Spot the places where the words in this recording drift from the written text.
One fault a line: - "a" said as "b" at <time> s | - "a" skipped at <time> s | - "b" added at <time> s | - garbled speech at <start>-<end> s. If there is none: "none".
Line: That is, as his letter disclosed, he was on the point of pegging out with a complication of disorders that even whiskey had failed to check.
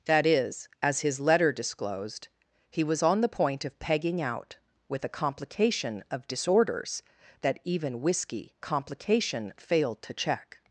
- "had" said as "complication" at 8.6 s